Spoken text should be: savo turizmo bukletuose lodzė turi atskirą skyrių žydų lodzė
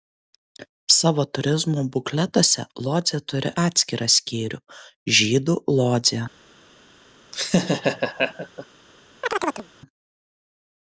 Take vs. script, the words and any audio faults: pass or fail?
fail